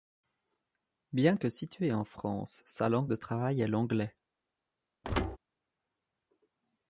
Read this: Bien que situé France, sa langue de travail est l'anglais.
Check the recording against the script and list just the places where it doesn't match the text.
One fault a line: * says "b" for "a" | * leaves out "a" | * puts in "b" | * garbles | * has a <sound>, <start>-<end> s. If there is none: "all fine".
* puts in "en"
* has a thud, 5.0-5.4 s